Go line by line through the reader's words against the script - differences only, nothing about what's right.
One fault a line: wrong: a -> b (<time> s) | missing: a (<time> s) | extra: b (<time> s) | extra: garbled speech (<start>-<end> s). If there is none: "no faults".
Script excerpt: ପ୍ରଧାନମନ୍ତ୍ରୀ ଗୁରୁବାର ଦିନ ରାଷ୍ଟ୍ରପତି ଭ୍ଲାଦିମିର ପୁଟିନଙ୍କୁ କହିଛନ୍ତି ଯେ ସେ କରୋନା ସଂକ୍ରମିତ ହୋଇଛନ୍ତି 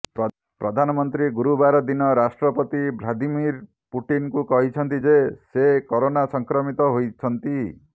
no faults